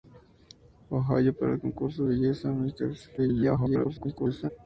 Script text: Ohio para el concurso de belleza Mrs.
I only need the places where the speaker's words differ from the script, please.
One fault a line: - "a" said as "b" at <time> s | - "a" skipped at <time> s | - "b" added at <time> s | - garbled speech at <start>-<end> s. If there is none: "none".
- "de" skipped at 2.0 s
- garbled speech at 3.2-4.5 s